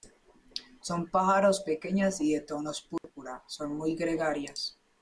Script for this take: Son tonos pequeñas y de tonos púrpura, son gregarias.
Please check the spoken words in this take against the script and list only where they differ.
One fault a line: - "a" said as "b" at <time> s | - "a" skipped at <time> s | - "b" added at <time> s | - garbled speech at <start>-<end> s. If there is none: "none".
- "tonos" said as "pájaros" at 1.1 s
- "muy" added at 3.8 s